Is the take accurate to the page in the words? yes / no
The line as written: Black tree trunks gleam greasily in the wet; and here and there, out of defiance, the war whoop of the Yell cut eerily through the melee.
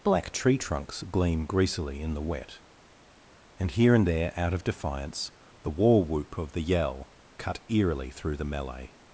yes